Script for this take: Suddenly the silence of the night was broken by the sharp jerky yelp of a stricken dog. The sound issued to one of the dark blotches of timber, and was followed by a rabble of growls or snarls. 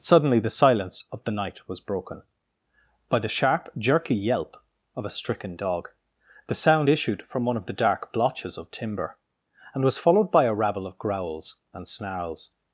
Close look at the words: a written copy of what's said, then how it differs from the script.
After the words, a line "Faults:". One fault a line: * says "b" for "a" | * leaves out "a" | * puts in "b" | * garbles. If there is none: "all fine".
Suddenly the silence of the night was broken by the sharp jerky yelp of a stricken dog. The sound issued from one of the dark blotches of timber, and was followed by a rabble of growls and snarls.
Faults:
* says "from" for "to"
* says "and" for "or"